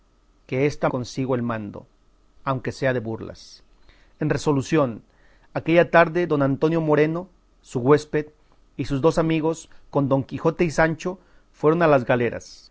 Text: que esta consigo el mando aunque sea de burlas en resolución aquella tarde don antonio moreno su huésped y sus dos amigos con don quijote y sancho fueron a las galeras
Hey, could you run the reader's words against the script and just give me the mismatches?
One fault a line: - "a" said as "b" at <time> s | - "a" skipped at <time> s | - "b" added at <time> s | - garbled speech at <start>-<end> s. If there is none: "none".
none